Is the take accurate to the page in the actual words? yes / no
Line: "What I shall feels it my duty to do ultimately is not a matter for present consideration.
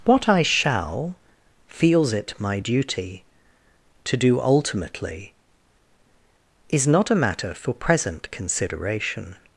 yes